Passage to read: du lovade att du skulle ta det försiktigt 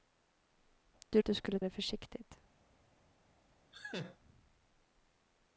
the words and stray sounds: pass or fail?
fail